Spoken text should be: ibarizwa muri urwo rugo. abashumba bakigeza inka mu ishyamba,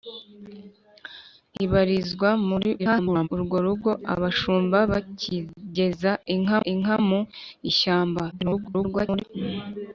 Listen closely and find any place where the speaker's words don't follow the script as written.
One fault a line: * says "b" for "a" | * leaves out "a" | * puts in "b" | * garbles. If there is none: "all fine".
* garbles
* puts in "inka"
* garbles